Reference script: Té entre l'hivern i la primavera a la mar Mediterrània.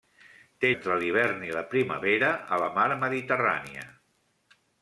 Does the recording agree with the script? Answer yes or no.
yes